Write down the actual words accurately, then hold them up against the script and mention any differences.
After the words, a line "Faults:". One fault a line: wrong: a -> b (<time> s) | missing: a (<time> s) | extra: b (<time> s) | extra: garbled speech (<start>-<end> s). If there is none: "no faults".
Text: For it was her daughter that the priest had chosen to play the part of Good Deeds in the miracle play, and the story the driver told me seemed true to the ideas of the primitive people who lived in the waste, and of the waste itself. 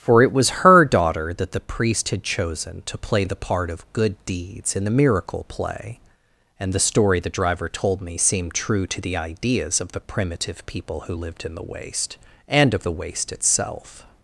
For it was her daughter that the priest had chosen to play the part of Good Deeds in the miracle play, and the story the driver told me seemed true to the ideas of the primitive people who lived in the waste, and of the waste itself.
Faults:
no faults